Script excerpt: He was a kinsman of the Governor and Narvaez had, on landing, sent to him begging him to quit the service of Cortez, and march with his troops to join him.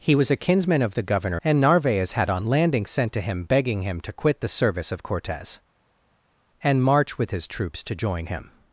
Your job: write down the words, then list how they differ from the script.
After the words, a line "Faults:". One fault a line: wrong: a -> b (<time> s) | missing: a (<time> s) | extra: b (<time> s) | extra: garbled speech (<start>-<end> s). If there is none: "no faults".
He was a kinsman of the Governor and Narvaez had, on landing, sent to him begging him to quit the service of Cortez, and march with his troops to join him.
Faults:
no faults